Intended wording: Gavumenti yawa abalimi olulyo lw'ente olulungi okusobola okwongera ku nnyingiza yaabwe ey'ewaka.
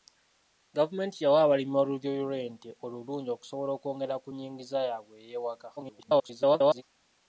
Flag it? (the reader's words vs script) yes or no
yes